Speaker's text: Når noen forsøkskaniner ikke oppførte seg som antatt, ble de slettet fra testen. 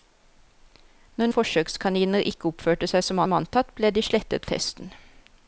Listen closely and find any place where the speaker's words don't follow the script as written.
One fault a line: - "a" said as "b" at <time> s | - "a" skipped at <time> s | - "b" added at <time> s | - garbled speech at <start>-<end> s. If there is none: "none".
- "noen" skipped at 1.3 s
- "som" added at 3.2 s
- "fra" skipped at 4.5 s